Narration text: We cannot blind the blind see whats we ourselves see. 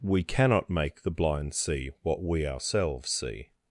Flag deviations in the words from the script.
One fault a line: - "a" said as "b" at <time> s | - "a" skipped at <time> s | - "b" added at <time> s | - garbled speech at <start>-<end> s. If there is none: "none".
- "blind" said as "make" at 0.7 s
- "whats" said as "what" at 2.0 s